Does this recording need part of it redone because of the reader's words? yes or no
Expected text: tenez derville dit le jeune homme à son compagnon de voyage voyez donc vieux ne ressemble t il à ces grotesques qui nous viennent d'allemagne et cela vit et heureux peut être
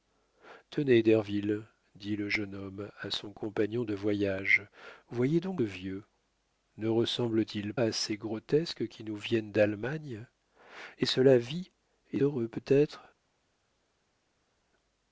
no